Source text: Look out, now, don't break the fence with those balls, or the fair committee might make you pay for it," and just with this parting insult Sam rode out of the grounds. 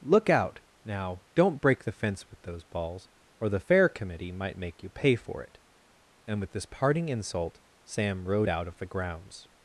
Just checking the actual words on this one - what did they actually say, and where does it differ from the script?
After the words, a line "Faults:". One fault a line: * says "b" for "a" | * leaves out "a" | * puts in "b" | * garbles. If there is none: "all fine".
Look out, now, don't break the fence with those balls, or the fair committee might make you pay for it," and with this parting insult Sam rode out of the grounds.
Faults:
* leaves out "just"